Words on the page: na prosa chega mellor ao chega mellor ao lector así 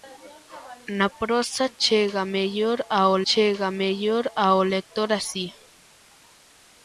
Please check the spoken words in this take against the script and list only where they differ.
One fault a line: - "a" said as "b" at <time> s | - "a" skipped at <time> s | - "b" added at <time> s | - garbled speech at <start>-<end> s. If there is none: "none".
none